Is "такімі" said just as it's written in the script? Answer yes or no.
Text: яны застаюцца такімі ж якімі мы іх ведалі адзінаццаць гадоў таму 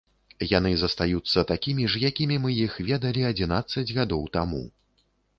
yes